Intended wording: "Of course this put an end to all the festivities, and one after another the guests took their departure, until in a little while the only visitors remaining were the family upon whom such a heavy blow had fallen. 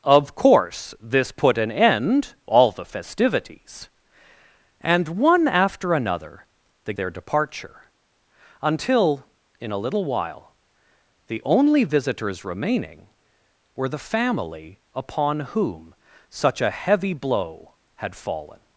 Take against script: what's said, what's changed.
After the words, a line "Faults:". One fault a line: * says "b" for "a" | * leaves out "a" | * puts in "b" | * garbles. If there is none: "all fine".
"Of course this put an end all the festivities, and one after another the their departure, until in a little while the only visitors remaining were the family upon whom such a heavy blow had fallen.
Faults:
* leaves out "to"
* leaves out "guests took"